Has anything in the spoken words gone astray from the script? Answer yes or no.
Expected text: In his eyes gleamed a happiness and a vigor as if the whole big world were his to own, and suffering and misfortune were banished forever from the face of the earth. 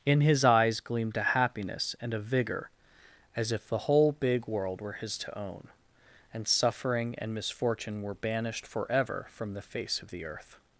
no